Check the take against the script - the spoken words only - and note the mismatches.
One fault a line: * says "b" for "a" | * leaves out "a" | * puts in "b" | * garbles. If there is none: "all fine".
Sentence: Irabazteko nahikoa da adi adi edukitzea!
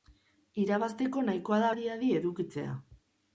all fine